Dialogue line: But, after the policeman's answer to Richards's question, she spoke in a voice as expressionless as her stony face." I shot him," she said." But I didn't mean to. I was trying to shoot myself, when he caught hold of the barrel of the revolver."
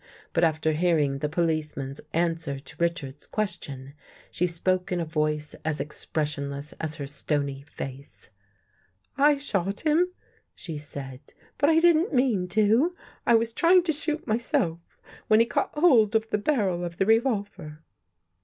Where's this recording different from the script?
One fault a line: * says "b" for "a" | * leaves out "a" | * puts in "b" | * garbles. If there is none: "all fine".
* puts in "hearing"